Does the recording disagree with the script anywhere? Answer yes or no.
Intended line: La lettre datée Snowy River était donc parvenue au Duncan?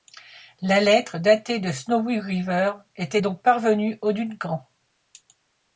yes